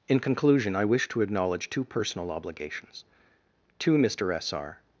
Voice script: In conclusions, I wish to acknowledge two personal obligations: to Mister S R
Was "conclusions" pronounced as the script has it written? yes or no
no